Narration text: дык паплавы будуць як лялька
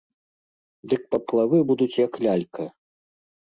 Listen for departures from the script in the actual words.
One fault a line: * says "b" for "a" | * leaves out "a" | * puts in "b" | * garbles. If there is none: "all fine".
all fine